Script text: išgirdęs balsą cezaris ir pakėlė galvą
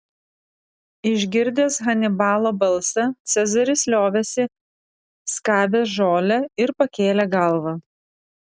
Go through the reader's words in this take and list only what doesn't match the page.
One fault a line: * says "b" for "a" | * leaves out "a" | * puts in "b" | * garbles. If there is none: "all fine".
* puts in "hanibalo"
* puts in "liovėsi skabęs žolę"